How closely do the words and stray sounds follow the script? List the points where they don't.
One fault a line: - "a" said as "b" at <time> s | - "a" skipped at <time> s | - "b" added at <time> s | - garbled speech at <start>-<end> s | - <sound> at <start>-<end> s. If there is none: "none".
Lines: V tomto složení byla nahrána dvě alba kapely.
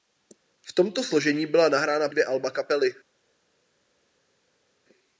none